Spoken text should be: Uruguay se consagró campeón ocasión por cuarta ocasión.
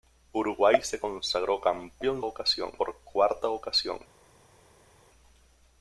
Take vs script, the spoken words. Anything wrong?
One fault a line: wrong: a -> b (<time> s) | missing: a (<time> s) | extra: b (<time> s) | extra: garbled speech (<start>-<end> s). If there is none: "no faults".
no faults